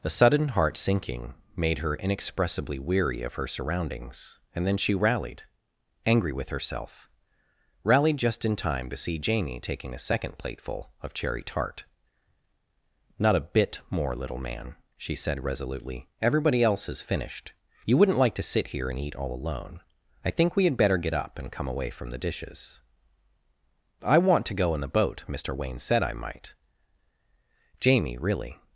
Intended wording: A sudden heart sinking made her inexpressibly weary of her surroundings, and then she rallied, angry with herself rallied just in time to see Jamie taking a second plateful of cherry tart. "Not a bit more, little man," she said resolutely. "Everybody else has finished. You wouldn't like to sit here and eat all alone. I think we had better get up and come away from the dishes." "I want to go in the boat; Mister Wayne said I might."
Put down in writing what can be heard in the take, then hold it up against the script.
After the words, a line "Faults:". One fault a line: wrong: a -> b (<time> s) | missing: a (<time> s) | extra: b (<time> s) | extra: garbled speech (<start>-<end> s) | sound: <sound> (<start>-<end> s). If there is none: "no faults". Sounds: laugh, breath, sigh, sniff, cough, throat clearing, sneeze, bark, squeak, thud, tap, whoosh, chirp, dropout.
A sudden heart sinking made her inexpressibly weary of her surroundings, and then she rallied, angry with herself rallied just in time to see Jamie taking a second plateful of cherry tart. "Not a bit more, little man," she said resolutely. "Everybody else has finished. You wouldn't like to sit here and eat all alone. I think we had better get up and come away from the dishes." "I want to go in the boat; Mister Wayne said I might." Jamie really
Faults:
extra: Jamie really (27.8 s)